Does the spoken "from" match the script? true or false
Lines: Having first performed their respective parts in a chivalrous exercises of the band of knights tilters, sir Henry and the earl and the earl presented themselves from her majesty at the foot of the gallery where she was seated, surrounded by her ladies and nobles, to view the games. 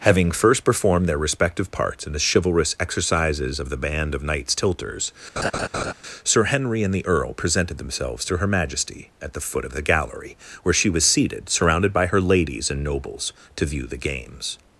false